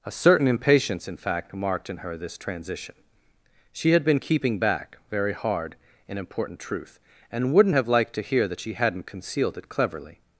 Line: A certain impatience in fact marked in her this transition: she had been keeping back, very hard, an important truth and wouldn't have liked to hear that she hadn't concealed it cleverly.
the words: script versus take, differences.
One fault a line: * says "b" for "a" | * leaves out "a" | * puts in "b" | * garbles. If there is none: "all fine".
all fine